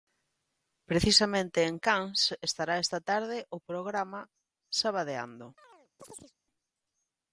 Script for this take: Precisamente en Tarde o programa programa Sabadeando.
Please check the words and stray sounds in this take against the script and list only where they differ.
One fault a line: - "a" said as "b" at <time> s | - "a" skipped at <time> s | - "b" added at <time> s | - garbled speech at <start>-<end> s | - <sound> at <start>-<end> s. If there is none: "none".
- "Cans estará esta" added at 1.8 s
- "programa" skipped at 4.2 s
- chirp at 5.6-6.3 s